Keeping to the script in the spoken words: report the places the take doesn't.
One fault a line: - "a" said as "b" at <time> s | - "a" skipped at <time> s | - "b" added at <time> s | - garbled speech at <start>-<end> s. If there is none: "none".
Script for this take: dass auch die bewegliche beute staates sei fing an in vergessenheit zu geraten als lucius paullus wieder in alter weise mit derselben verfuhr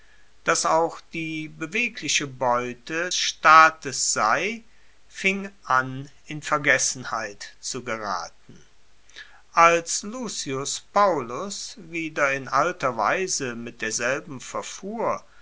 none